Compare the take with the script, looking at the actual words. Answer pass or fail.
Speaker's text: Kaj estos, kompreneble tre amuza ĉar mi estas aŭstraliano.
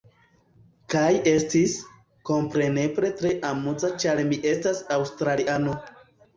fail